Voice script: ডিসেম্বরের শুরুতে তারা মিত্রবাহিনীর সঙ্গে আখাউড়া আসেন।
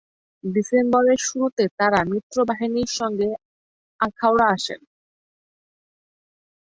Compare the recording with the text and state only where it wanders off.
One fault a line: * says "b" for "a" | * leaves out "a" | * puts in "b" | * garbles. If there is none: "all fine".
all fine